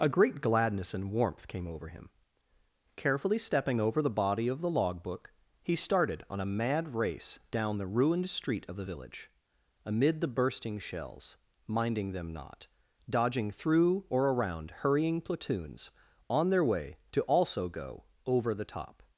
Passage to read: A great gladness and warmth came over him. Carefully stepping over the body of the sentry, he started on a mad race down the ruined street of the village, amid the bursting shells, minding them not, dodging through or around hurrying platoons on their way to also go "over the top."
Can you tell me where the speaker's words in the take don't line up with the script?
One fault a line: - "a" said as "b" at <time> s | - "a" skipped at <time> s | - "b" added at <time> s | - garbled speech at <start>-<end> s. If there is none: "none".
- "sentry" said as "logbook" at 4.7 s